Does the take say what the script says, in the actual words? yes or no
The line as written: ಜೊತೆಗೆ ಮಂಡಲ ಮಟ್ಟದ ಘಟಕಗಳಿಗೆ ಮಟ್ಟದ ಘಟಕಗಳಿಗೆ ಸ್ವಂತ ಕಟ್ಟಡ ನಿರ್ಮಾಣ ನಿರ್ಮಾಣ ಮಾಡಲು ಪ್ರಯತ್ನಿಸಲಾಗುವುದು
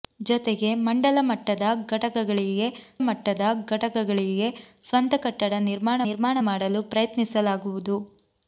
yes